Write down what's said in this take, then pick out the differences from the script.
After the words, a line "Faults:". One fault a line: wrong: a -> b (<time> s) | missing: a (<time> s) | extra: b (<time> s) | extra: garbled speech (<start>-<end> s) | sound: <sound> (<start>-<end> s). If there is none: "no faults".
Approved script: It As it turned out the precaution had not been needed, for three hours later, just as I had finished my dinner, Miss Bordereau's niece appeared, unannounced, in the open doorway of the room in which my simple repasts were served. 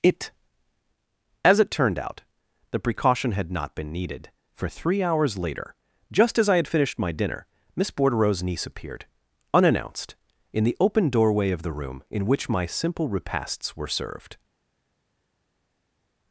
It As it turned out the precaution had not been needed, for three hours later, just as I had finished my dinner, Miss Bordereau's niece appeared, unannounced, in the open doorway of the room in which my simple repasts were served.
Faults:
no faults